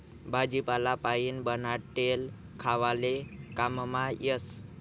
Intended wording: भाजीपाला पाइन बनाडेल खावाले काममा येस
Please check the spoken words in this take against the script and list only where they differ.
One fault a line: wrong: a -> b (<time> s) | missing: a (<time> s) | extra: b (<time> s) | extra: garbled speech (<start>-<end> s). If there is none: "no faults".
no faults